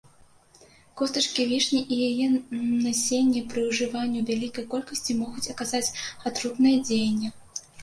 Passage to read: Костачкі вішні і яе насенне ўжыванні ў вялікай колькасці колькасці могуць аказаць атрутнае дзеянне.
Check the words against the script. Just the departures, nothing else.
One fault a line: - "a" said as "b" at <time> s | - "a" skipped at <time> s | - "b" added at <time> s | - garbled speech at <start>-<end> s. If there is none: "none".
- "пры" added at 3.5 s
- "колькасці" skipped at 5.2 s